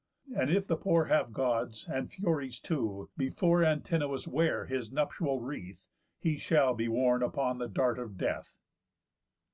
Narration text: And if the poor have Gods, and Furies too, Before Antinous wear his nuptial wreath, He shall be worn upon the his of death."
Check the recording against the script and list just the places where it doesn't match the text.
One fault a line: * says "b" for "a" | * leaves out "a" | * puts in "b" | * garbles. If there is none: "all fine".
* says "dart" for "his"